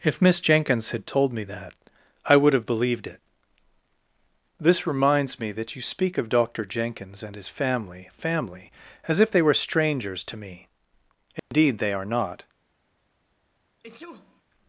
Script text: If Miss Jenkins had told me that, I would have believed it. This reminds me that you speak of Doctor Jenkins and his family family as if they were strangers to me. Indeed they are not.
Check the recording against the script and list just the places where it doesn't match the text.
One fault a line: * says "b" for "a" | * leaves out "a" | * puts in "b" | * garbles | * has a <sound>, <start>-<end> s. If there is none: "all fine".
* has a dropout, 11.4-11.5 s
* has a sneeze, 13.8-14.4 s